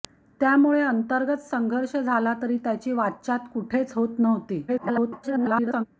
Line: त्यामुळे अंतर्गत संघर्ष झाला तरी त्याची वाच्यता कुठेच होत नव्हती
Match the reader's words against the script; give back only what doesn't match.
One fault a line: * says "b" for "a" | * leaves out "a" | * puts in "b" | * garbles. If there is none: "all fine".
* garbles